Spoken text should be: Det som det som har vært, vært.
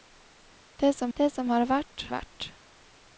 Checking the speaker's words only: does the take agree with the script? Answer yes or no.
yes